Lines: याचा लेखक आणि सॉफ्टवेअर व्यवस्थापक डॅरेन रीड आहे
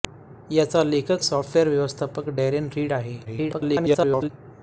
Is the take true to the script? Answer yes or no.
no